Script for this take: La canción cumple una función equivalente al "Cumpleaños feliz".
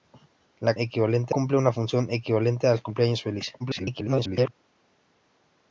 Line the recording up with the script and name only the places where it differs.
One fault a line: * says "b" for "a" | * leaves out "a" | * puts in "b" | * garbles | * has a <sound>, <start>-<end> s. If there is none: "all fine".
* says "equivalente" for "canción"
* garbles